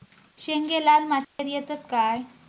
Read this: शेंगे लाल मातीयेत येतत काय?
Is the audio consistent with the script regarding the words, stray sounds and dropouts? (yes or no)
no